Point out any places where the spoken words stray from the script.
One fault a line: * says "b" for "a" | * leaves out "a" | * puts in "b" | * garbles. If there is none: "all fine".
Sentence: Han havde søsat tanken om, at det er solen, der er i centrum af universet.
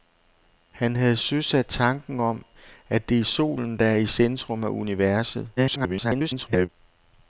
* garbles